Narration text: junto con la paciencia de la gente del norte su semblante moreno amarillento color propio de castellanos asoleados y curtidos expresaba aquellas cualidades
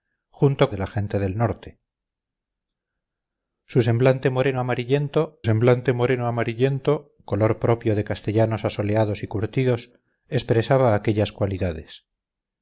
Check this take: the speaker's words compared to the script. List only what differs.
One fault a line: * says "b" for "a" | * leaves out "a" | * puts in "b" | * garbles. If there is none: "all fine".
* leaves out "con la paciencia"
* puts in "semblante moreno amarillento"